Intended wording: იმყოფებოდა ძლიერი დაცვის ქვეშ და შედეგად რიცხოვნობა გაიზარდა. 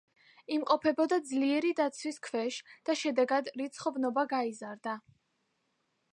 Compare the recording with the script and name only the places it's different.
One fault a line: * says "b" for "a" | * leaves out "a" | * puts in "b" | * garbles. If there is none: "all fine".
all fine